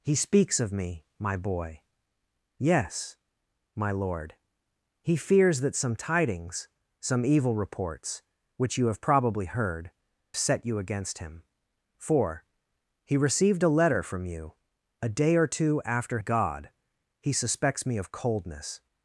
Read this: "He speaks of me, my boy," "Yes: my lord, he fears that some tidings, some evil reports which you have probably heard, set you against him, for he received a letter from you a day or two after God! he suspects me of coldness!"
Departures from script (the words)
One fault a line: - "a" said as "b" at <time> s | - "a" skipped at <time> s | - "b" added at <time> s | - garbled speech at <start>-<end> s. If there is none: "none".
none